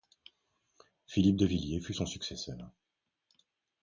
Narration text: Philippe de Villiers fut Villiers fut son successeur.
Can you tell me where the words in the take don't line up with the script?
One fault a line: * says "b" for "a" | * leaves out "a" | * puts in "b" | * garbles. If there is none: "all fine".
* leaves out "Villiers fut"